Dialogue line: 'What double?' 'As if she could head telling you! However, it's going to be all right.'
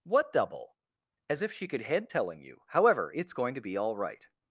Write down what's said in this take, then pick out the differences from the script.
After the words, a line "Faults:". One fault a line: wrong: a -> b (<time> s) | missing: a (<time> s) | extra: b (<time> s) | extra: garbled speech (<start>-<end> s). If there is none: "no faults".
'What double?' 'As if she could head telling you! However, it's going to be all right.'
Faults:
no faults